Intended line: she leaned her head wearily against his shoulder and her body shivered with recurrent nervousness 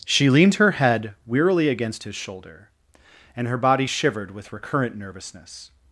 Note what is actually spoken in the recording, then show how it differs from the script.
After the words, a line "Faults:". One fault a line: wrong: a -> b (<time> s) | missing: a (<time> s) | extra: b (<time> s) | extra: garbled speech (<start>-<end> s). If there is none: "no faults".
she leaned her head wearily against his shoulder and her body shivered with recurrent nervousness
Faults:
no faults